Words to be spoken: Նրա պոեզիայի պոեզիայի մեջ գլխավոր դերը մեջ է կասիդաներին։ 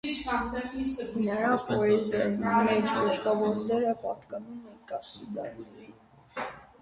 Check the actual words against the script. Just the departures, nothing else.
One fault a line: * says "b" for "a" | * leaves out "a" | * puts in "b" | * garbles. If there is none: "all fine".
* leaves out "պոեզիայի"
* says "պատկանում" for "մեջ"